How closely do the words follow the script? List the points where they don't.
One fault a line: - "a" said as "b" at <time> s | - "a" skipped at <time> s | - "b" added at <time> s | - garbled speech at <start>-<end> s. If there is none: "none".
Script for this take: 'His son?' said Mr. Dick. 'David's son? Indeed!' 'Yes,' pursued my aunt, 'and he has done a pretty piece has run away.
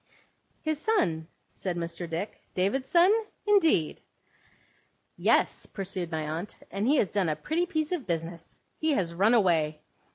- "of business He" added at 7.9 s